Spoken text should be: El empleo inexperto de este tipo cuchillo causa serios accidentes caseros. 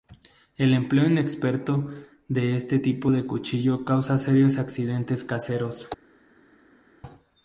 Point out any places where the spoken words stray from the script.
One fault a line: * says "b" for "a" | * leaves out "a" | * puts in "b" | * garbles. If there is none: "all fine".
* puts in "de"